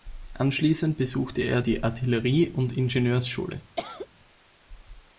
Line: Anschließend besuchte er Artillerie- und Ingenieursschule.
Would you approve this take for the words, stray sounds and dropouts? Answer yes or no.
no